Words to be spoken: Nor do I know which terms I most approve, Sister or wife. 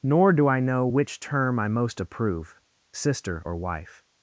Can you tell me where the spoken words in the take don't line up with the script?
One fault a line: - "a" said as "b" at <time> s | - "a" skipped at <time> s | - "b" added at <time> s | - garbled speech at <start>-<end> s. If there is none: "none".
- "terms" said as "term" at 1.2 s